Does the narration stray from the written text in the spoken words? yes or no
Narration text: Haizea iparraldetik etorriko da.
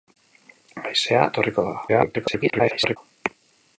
yes